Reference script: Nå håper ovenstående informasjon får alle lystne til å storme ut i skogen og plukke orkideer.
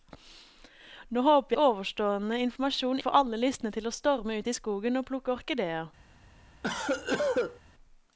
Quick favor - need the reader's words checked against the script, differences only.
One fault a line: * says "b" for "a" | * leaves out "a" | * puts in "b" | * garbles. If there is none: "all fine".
all fine